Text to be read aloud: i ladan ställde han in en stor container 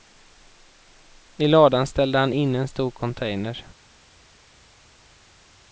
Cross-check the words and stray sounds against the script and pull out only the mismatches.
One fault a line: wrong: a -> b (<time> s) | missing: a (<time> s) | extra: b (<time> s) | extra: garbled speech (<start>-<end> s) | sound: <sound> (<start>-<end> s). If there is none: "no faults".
no faults